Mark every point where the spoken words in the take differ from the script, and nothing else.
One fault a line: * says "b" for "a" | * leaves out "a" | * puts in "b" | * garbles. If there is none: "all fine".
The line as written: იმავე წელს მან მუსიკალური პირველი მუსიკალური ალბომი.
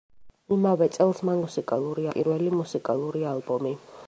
all fine